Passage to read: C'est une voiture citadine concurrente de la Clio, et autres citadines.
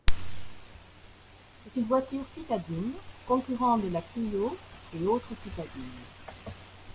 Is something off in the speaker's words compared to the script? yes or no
no